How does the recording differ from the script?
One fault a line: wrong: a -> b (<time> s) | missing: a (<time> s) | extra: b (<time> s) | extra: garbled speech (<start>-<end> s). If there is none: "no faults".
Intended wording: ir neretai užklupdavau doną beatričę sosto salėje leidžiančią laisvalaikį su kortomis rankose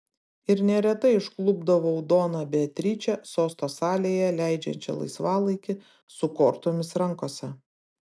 no faults